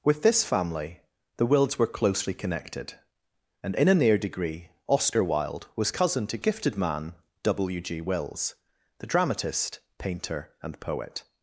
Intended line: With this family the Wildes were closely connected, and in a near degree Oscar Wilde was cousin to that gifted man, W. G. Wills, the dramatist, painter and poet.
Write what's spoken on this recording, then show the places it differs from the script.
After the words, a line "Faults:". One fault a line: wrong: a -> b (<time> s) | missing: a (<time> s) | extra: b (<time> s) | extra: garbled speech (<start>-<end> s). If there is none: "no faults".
With this family the Wildes were closely connected, and in a near degree Oscar Wilde was cousin to gifted man, W. G. Wills, the dramatist, painter and poet.
Faults:
missing: that (6.4 s)